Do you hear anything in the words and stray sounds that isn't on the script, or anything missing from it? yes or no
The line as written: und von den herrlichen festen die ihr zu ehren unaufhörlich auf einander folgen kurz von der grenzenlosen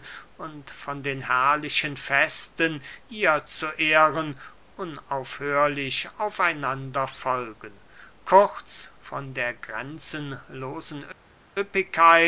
yes